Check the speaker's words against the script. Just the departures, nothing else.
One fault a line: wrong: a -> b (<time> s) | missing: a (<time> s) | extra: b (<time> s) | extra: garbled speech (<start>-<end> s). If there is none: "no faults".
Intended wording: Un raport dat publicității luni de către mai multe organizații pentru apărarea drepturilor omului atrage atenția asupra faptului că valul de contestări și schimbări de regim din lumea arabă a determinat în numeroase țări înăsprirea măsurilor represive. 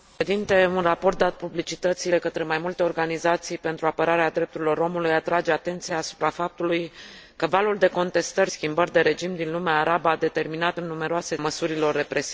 missing: luni (2.1 s)
missing: și (8.5 s)
missing: țări înăsprirea (11.4 s)